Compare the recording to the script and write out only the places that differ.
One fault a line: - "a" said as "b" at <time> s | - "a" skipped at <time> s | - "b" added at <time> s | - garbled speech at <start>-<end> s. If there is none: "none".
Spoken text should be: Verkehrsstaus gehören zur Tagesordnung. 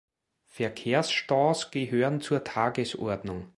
none